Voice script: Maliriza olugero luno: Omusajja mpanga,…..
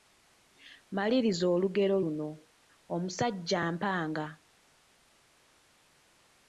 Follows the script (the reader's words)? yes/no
yes